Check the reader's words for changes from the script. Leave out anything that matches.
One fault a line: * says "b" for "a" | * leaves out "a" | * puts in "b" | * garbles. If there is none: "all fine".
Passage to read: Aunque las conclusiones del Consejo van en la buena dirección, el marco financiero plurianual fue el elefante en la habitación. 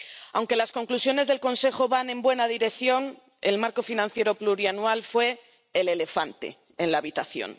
all fine